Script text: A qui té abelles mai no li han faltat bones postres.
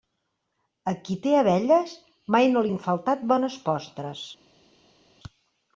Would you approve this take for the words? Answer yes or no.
no